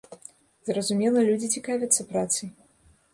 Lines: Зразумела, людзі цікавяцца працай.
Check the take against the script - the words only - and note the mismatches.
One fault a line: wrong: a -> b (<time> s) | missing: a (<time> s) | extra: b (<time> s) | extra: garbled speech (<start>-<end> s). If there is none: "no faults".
no faults